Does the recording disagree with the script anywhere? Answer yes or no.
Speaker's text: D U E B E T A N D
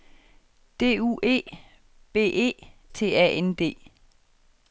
no